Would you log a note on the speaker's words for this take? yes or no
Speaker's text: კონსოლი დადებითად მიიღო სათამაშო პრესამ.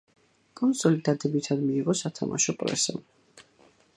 no